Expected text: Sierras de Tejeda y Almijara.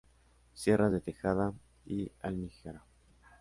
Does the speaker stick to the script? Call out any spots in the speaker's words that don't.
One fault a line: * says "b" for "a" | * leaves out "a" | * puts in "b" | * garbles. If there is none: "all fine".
all fine